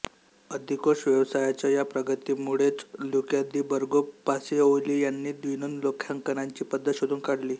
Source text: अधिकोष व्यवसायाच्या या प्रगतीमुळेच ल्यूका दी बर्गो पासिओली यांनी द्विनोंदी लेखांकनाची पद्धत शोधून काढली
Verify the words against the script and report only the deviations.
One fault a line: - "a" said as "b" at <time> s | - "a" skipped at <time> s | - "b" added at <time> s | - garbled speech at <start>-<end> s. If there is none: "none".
none